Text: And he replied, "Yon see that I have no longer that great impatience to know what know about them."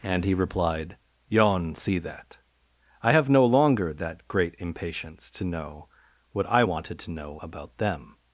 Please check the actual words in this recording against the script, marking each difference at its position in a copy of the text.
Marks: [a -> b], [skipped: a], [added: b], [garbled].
And he replied, "Yon see that I have no longer that great impatience to know what [added: I wanted to] know about them."